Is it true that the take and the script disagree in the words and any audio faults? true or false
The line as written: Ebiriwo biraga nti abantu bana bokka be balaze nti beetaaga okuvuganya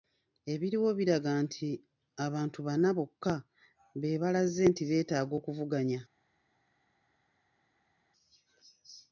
false